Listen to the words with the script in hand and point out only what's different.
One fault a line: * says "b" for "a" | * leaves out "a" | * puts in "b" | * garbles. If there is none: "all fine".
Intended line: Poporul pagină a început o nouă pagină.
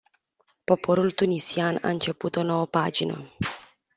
* says "tunisian" for "pagină"